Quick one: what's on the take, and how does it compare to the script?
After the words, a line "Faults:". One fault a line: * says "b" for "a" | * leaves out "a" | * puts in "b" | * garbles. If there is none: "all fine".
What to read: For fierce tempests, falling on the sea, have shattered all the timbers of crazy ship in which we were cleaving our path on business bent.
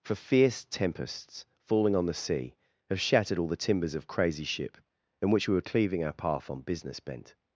For fierce tempests, falling on the sea, have shattered all the timbers of crazy ship in which we were cleaving our path on business bent.
Faults:
all fine